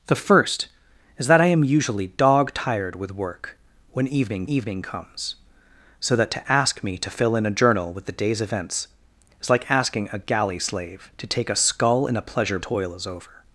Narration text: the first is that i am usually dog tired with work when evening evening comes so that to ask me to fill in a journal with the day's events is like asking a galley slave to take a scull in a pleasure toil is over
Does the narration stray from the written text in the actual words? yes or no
no